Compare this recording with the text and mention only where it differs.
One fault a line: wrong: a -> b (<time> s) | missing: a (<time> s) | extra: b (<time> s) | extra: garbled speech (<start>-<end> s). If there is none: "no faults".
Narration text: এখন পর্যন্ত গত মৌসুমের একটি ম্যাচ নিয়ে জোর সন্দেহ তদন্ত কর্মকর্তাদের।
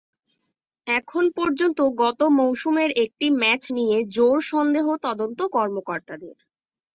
no faults